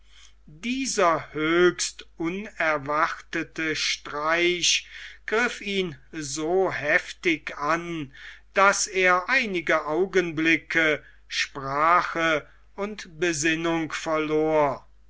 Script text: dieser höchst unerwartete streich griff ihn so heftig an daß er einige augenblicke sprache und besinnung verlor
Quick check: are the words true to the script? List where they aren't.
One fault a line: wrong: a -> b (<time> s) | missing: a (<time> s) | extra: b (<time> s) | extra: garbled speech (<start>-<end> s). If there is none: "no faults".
no faults